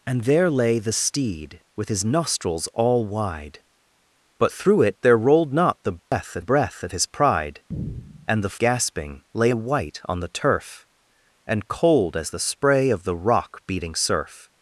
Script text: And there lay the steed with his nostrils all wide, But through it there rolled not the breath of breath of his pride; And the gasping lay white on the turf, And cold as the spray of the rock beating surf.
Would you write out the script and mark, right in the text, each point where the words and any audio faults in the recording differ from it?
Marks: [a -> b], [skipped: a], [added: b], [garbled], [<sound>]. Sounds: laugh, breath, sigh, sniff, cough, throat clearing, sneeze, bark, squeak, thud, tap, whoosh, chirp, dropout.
And there lay the steed with his nostrils all wide, But through it there rolled not the breath [dropout] of breath of his pride; And the gasping lay white on the turf, And cold as the spray of the rock beating surf.